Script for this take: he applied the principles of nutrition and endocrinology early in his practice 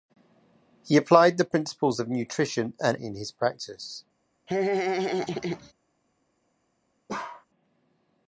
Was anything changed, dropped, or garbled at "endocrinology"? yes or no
yes